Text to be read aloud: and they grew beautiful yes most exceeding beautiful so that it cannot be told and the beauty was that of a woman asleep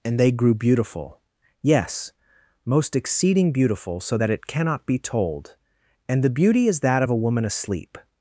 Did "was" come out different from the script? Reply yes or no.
yes